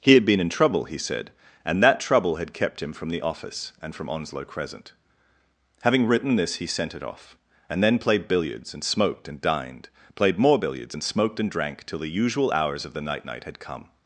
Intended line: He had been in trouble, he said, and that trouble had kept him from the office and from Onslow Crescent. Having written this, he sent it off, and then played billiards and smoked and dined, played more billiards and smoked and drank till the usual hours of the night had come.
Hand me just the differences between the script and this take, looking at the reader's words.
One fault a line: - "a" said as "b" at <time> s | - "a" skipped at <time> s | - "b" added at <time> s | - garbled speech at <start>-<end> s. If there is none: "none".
- "night" added at 13.2 s